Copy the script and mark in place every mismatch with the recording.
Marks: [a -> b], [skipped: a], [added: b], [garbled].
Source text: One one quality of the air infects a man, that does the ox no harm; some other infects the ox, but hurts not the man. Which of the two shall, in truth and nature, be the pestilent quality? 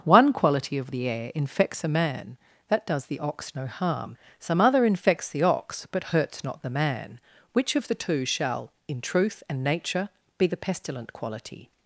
One [skipped: one] quality of the air infects a man, that does the ox no harm; some other infects the ox, but hurts not the man. Which of the two shall, in truth and nature, be the pestilent quality?